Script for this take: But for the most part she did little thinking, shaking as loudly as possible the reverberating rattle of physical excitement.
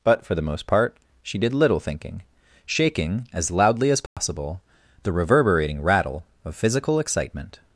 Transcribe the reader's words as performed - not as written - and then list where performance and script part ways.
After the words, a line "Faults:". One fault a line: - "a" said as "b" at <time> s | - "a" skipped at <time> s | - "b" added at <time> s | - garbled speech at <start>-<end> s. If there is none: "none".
But for the most part she did little thinking, shaking as loudly as possible the reverberating rattle of physical excitement.
Faults:
none